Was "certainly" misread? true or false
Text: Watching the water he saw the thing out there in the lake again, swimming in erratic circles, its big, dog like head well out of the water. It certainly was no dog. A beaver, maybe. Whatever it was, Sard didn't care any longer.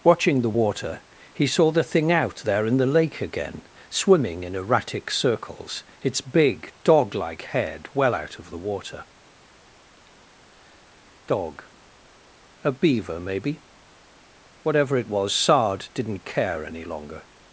true